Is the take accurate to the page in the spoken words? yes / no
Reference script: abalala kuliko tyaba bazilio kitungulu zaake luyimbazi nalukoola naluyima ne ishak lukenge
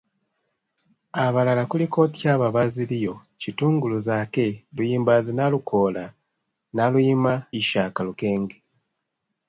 no